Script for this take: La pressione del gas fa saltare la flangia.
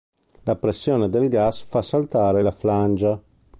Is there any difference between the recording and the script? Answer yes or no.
no